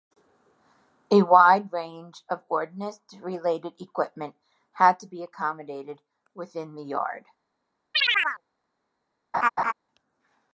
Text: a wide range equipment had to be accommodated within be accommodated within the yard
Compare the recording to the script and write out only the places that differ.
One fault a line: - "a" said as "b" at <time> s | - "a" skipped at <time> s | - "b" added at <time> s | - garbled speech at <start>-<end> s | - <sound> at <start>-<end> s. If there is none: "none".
- "of ordnance related" added at 2.3 s
- "be accommodated within" skipped at 6.7 s
- chirp at 7.9-8.4 s
- laugh at 9.3-9.7 s